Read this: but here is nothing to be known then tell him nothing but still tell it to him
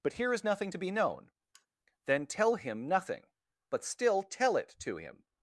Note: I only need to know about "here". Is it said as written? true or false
true